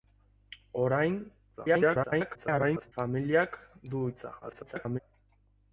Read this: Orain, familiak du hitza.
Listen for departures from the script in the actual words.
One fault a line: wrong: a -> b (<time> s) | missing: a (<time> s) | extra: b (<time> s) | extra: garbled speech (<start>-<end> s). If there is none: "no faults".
extra: garbled speech (1.6-2.9 s)
extra: garbled speech (4.4-5.0 s)